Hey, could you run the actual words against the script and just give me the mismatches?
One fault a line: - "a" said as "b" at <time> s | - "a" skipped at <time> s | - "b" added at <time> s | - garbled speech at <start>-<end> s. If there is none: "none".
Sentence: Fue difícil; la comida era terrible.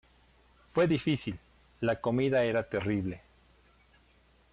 none